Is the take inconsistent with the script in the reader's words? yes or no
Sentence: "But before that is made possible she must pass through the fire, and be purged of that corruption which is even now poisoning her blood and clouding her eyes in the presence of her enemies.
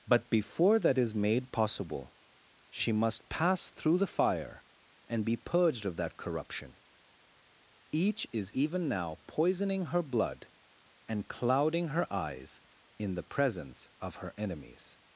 yes